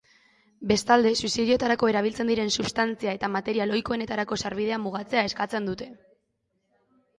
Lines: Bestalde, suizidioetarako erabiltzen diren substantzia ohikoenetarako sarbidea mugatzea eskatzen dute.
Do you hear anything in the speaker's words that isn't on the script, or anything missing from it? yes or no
yes